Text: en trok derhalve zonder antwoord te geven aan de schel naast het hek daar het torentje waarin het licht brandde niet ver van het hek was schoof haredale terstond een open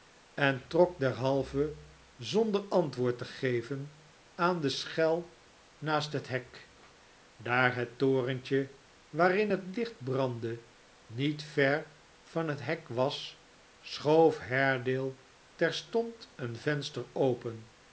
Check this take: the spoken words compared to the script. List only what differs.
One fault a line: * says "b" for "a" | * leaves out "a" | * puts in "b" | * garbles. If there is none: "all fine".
* puts in "venster"